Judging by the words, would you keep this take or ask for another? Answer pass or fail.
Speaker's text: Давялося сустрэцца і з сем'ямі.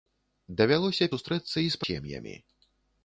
pass